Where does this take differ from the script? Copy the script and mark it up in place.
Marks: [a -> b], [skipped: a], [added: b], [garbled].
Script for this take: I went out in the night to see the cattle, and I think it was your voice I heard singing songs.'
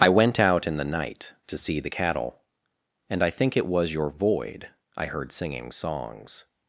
I went out in the night to see the cattle, and I think it was your [voice -> void] I heard singing songs.'